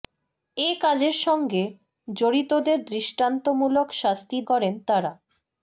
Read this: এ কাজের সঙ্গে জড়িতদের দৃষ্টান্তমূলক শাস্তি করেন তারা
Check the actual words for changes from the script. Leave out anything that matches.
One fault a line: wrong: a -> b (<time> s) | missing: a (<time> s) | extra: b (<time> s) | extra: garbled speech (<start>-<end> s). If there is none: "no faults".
no faults